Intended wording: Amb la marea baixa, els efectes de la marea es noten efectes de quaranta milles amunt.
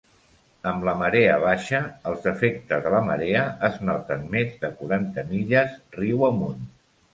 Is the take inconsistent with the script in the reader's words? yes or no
yes